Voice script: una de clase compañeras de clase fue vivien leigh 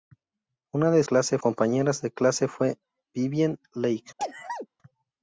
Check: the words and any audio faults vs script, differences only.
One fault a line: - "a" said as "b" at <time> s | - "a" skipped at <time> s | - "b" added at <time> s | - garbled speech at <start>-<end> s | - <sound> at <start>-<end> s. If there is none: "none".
- sneeze at 4.2-4.7 s